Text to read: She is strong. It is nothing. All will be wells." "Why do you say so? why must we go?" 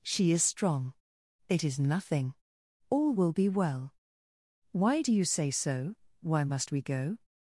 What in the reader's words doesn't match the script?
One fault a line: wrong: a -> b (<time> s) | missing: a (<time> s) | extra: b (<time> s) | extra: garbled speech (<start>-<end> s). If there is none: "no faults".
wrong: wells -> well (3.5 s)